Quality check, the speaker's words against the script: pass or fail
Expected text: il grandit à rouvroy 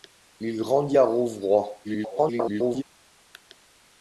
fail